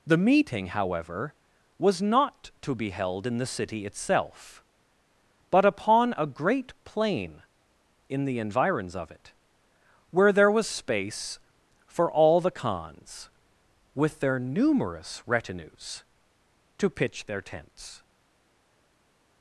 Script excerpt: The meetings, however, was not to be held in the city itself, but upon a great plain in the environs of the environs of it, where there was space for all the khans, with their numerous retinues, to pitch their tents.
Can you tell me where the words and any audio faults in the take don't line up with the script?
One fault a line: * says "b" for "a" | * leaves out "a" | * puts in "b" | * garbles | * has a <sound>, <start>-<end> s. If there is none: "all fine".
* says "meeting" for "meetings"
* leaves out "the environs of"